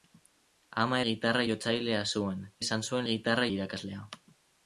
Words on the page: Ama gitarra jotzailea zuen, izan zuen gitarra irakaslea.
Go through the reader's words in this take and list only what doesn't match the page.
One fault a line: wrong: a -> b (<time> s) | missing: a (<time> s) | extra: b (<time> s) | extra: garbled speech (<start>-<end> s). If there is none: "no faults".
no faults